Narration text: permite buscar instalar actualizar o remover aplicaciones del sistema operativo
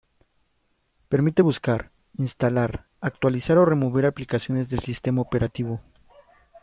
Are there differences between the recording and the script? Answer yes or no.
no